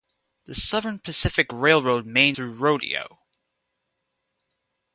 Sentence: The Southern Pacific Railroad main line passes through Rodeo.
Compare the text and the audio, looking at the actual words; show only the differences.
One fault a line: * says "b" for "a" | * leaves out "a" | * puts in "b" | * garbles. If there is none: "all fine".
* leaves out "line passes"